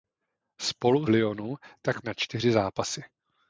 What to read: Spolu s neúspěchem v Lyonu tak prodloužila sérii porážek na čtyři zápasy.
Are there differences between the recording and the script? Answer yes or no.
yes